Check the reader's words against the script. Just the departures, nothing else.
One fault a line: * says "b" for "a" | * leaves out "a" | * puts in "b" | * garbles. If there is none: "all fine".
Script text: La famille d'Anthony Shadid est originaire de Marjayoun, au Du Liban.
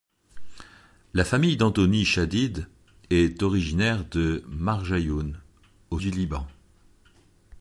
all fine